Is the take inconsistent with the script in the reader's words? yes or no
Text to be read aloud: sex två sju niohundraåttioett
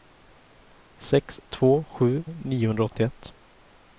no